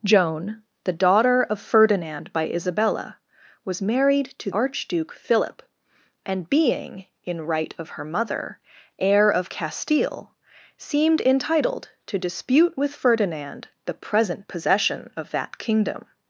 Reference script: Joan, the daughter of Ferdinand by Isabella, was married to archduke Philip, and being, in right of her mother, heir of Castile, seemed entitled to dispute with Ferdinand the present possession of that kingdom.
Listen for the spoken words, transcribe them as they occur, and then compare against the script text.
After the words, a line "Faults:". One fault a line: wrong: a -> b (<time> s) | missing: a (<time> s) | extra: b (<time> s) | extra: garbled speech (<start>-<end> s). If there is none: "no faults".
Joan, the daughter of Ferdinand by Isabella, was married to archduke Philip, and being, in right of her mother, heir of Castile, seemed entitled to dispute with Ferdinand the present possession of that kingdom.
Faults:
no faults